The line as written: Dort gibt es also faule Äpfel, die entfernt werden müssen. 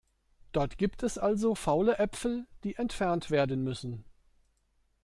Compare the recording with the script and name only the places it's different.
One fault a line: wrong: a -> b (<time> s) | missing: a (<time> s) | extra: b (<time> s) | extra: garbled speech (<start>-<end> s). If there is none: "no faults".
no faults